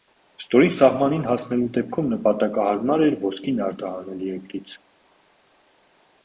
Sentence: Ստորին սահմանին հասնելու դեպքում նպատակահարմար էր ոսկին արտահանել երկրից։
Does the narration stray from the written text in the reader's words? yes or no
no